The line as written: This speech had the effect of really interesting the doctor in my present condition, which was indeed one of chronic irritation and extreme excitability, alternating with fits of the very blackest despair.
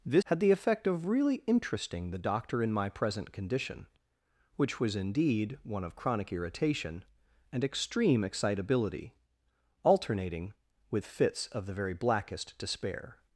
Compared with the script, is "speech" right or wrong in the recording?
wrong